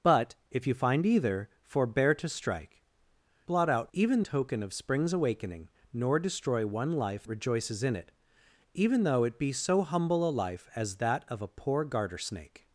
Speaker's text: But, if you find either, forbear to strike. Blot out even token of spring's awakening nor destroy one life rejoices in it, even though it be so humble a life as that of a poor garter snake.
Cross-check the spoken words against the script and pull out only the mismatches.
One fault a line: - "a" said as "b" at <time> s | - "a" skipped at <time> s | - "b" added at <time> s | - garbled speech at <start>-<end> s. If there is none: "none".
none